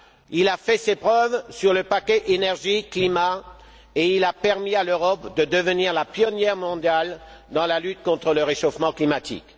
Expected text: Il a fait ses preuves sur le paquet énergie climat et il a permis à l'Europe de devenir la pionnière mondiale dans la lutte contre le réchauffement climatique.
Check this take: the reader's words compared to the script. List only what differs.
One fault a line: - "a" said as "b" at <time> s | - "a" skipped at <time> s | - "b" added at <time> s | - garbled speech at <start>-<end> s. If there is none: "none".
none